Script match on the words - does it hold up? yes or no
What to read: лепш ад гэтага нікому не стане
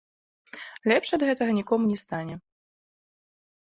yes